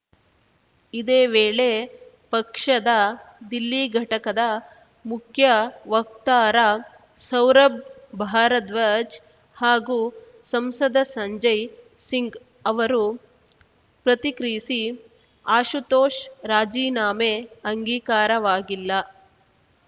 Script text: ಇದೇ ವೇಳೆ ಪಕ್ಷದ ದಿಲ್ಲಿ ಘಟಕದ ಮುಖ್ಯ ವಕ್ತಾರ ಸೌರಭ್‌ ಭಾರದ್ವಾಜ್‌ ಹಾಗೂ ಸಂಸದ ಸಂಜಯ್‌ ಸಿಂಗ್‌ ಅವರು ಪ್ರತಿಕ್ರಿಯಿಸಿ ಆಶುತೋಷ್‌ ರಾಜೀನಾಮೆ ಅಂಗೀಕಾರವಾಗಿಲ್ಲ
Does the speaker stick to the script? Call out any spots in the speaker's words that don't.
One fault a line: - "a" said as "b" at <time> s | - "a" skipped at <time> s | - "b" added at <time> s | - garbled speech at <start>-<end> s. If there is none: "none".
none